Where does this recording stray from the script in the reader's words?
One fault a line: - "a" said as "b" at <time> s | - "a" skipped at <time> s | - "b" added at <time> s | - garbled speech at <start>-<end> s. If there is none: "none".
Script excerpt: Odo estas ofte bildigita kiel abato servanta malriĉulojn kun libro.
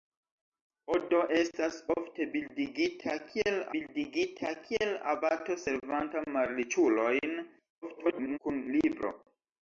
- "bildigita kiel" added at 3.7 s
- garbled speech at 7.8-8.4 s